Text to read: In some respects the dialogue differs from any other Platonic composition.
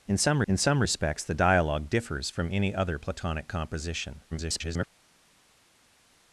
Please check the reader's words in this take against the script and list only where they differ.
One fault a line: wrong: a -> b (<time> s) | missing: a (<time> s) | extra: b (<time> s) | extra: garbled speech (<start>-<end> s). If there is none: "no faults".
extra: in some (0.5 s)
extra: garbled speech (4.3-4.9 s)